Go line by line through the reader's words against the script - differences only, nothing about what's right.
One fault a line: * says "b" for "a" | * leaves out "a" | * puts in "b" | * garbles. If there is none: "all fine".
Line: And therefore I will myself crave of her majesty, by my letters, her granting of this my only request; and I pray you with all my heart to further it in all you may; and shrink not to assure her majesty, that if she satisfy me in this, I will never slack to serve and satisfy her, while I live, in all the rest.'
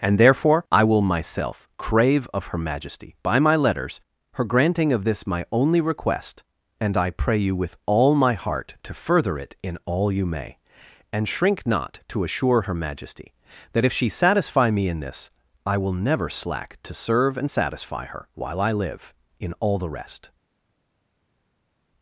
all fine